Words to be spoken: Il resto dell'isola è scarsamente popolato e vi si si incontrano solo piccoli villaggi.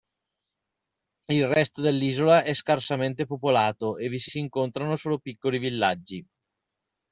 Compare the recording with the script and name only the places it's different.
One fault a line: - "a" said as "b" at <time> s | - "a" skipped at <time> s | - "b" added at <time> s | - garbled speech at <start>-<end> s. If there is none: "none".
none